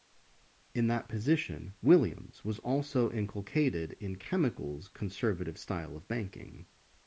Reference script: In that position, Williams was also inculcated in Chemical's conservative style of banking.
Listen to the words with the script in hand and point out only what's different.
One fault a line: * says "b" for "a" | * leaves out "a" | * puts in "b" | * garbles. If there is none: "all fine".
all fine